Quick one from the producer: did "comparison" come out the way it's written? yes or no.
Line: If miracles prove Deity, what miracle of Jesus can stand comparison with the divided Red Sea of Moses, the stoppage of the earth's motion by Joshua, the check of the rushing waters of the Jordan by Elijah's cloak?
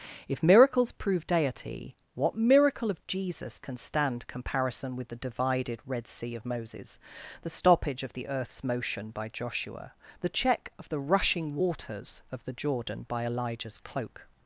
yes